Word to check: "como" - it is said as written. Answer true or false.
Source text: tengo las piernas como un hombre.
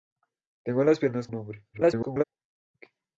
false